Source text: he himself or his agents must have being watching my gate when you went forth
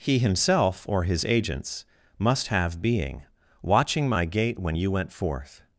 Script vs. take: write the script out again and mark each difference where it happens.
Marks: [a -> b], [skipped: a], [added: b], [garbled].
he himself or his agents must have being watching my gate when you went forth